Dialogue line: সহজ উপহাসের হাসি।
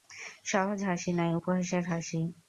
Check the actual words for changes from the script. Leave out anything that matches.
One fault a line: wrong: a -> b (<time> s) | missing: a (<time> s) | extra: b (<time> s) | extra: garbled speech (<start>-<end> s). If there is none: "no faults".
extra: হাসি নয় (0.9 s)